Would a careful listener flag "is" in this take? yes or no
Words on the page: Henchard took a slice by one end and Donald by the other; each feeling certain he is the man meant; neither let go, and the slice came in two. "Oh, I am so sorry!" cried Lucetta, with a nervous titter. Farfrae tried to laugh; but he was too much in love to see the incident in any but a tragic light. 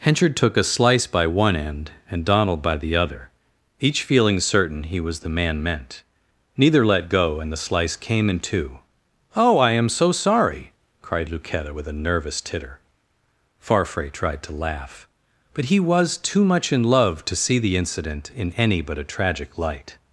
yes